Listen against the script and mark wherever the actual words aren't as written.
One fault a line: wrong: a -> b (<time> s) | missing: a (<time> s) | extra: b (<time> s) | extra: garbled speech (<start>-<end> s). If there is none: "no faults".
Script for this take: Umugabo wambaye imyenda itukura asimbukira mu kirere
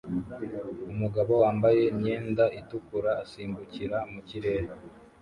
no faults